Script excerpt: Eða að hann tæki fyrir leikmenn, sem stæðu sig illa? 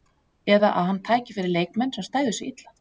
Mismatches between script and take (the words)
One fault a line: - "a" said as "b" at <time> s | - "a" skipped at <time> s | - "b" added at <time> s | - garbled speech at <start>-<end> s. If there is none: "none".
none